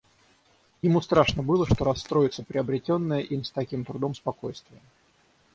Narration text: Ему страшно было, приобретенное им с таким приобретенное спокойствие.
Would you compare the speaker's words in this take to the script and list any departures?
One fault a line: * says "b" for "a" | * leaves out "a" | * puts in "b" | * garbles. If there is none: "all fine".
* puts in "что расстроится"
* says "трудом" for "приобретенное"